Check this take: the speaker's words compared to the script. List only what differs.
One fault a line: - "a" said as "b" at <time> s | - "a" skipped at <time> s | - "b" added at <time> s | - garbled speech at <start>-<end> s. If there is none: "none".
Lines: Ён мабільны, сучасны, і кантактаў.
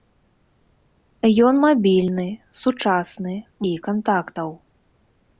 none